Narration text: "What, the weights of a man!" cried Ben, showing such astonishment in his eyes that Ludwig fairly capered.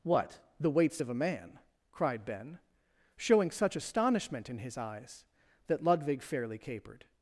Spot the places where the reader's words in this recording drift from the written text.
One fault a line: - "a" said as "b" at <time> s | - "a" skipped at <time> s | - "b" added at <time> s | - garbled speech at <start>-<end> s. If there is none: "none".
none